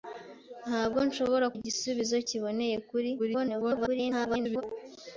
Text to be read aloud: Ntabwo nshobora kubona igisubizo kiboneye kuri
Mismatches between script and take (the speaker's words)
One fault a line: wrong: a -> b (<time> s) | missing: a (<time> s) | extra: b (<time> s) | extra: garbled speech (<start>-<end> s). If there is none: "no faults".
missing: kubona (1.5 s)
extra: garbled speech (3.2-4.6 s)